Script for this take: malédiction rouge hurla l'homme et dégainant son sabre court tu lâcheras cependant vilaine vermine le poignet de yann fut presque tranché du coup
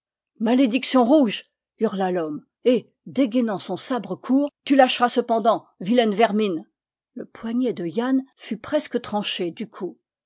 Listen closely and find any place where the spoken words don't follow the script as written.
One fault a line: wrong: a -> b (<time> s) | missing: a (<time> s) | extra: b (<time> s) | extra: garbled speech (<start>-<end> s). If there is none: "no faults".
no faults